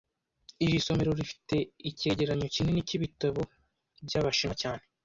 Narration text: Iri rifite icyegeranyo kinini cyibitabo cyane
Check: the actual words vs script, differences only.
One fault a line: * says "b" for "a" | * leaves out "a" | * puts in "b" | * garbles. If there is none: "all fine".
* puts in "somero"
* puts in "byabashinwa"